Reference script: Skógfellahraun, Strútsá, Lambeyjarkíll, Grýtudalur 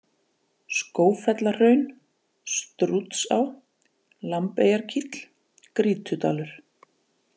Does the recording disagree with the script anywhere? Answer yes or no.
no